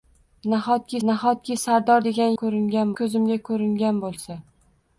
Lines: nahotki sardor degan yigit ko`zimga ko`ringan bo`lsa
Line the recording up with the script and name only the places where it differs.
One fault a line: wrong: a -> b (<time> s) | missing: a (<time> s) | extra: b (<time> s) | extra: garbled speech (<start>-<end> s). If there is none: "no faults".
extra: nahotki (1.1 s)
wrong: yigit -> ko`ringan (2.4 s)